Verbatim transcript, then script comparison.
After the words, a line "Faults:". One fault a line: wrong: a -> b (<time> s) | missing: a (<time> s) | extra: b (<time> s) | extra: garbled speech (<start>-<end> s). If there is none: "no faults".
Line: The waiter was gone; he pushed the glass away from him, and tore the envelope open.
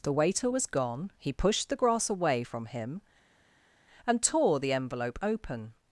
The waiter was gone; he pushed the grass away from him, and tore the envelope open.
Faults:
wrong: glass -> grass (1.8 s)